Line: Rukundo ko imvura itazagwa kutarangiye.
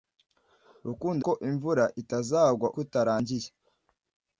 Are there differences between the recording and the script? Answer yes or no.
no